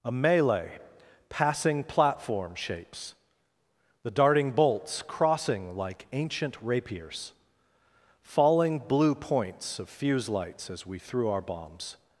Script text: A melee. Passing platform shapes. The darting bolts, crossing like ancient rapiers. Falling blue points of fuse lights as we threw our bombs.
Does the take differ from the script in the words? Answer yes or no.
no